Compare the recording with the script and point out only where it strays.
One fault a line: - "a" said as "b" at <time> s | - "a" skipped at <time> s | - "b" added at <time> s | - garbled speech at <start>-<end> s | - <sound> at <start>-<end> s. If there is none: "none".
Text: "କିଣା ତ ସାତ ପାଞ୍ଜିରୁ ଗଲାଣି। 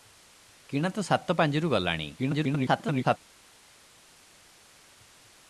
- garbled speech at 2.2-3.2 s